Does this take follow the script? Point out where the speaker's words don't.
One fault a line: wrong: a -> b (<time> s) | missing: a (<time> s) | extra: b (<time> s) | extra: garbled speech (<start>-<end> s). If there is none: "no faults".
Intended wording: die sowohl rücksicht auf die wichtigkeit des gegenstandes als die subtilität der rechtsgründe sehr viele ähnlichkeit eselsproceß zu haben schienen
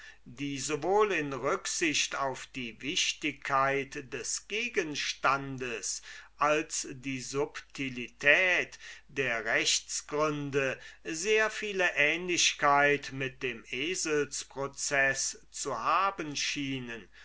extra: in (1.1 s)
extra: mit dem (13.1 s)